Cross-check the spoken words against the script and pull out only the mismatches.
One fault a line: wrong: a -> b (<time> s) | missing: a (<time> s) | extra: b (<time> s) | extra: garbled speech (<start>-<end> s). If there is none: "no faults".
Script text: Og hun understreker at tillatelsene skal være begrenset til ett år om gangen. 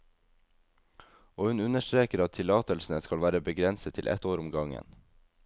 no faults